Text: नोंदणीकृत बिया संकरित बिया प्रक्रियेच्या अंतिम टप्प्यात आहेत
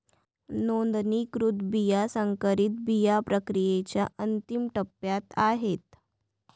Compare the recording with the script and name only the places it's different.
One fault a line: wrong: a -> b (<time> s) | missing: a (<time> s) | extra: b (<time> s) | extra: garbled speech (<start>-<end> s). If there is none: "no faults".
no faults